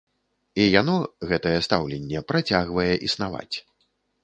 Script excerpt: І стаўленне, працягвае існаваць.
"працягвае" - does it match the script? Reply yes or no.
yes